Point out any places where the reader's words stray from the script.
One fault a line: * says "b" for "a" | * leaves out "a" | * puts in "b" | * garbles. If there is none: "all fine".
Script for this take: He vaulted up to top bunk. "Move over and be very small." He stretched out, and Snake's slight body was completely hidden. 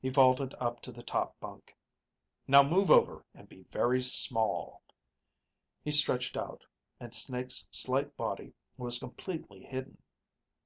* puts in "the"
* puts in "Now"